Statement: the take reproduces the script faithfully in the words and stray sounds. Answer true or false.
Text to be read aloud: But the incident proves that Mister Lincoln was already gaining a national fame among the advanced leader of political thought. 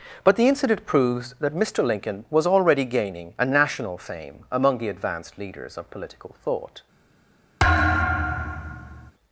false